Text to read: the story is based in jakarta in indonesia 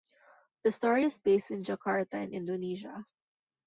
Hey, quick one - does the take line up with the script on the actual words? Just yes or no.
yes